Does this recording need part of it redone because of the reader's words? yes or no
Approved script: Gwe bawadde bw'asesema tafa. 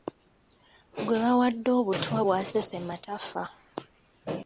yes